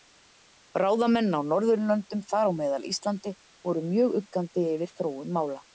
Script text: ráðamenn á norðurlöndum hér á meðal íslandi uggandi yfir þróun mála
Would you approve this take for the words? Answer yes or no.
no